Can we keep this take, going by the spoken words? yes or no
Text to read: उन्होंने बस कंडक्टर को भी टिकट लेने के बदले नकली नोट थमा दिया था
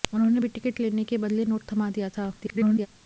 no